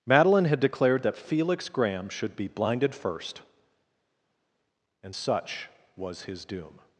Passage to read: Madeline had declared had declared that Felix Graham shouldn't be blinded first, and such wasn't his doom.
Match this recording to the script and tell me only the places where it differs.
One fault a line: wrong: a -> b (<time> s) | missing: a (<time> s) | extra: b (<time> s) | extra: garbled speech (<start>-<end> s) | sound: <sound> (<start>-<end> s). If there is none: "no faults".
missing: had declared (1.0 s)
wrong: shouldn't -> should (2.1 s)
wrong: wasn't -> was (5.9 s)